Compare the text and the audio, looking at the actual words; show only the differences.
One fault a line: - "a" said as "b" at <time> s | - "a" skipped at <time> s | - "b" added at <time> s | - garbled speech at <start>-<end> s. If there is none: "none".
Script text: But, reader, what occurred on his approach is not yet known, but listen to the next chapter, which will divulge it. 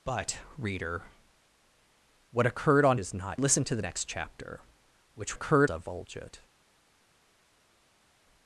- "his approach" skipped at 3.0 s
- "yet known but" skipped at 3.4 s
- "will" said as "occurred" at 5.3 s